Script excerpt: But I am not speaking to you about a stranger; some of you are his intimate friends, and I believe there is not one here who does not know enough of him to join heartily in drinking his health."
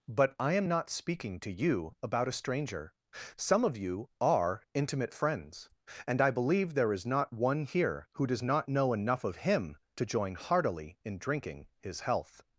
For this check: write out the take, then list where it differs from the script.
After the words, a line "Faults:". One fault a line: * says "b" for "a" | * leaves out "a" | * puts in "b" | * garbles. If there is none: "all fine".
But I am not speaking to you about a stranger; some of you are intimate friends, and I believe there is not one here who does not know enough of him to join heartily in drinking his health."
Faults:
* leaves out "his"